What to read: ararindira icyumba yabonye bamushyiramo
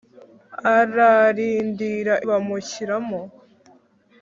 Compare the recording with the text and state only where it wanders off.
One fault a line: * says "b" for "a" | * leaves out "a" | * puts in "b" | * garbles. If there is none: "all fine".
* leaves out "icyumba yabonye"